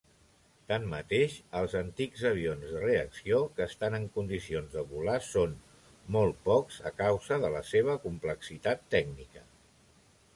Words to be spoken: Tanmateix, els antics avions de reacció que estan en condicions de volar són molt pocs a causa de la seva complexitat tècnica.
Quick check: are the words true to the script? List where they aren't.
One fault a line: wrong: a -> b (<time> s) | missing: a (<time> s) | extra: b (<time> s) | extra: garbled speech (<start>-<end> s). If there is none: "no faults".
no faults